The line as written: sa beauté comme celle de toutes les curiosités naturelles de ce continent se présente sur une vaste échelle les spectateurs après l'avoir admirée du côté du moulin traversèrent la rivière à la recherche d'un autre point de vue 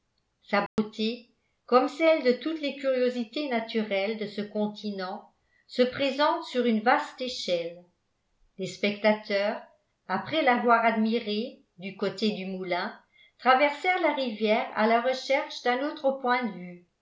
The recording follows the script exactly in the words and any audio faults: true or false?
false